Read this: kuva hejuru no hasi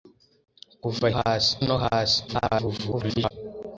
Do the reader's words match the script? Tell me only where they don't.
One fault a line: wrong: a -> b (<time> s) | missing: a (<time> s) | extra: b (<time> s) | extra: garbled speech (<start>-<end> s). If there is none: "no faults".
wrong: hejuru -> hasi (1.2 s)
extra: garbled speech (2.3-3.3 s)